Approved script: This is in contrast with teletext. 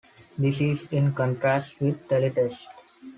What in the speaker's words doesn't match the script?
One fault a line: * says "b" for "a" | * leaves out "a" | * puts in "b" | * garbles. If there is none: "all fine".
all fine